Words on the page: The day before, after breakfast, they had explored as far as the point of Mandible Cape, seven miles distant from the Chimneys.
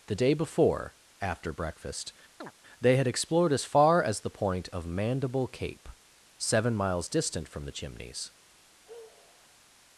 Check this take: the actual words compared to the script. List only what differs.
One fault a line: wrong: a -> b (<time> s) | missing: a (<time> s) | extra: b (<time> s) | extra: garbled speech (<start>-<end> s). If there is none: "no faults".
no faults